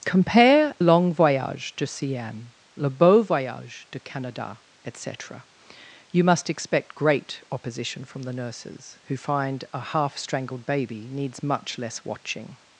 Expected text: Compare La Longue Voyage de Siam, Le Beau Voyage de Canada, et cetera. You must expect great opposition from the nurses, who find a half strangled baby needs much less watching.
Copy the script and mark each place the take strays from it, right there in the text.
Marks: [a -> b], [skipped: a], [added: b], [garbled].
Compare [skipped: La] Longue Voyage de Siam, Le Beau Voyage de Canada, et cetera. You must expect great opposition from the nurses, who find a half strangled baby needs much less watching.